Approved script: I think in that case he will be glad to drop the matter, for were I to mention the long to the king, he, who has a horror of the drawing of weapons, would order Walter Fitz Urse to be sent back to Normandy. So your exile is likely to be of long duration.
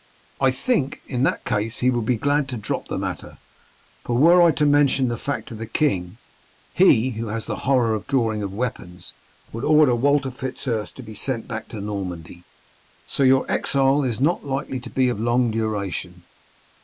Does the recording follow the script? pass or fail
fail